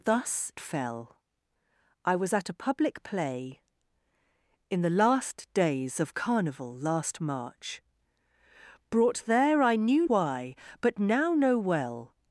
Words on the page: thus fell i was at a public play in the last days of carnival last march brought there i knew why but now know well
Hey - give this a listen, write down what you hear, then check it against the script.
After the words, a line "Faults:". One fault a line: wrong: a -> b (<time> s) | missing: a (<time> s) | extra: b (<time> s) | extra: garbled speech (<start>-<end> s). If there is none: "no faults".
thus fell i was at a public play in the last days of carnival last march brought there i knew why but now know well
Faults:
no faults